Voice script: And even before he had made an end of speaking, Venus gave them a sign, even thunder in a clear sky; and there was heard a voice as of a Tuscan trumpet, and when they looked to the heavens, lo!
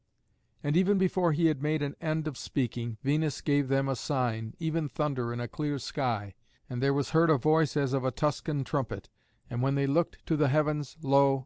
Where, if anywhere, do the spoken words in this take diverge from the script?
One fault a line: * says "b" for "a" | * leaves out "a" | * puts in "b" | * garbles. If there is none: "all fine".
all fine